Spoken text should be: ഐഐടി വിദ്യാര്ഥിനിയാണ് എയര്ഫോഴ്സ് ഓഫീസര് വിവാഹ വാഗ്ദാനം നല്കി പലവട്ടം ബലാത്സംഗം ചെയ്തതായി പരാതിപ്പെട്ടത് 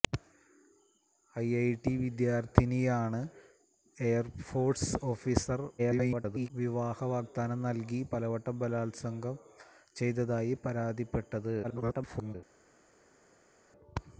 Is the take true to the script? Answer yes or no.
no